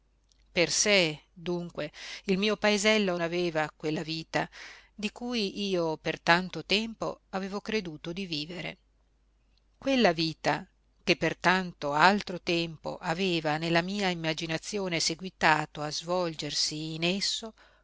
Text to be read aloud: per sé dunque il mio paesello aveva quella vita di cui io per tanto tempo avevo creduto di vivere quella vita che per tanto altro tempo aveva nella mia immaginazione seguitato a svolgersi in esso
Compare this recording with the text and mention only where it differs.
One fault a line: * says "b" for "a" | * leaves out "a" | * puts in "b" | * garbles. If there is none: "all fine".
all fine